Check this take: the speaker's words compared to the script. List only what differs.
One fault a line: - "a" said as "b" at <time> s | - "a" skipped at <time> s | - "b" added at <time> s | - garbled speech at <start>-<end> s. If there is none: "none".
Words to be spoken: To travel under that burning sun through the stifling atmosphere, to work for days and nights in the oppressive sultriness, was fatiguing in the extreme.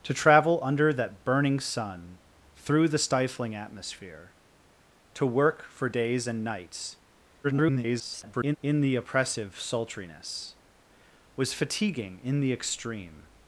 - garbled speech at 7.4-8.6 s